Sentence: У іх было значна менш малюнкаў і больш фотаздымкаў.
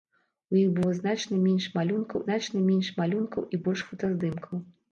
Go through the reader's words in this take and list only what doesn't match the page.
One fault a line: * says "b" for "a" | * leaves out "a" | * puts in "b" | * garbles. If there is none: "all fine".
* puts in "значна менш малюнкаў"